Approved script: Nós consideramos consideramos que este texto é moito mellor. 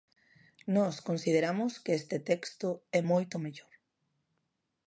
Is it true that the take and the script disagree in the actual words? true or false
true